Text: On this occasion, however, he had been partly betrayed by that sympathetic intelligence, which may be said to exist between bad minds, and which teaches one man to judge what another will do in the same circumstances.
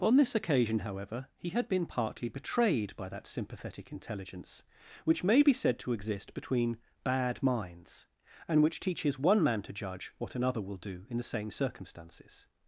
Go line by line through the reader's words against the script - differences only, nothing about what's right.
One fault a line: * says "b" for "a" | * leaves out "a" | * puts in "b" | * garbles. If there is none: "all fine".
all fine